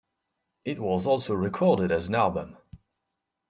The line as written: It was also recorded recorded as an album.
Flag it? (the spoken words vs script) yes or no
yes